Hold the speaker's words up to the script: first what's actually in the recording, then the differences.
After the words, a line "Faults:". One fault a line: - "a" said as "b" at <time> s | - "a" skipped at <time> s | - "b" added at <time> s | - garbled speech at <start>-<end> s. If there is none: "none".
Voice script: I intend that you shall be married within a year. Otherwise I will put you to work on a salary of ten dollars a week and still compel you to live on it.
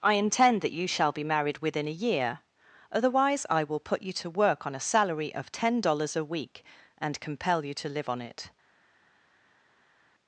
I intend that you shall be married within a year. Otherwise I will put you to work on a salary of ten dollars a week and compel you to live on it.
Faults:
- "still" skipped at 7.2 s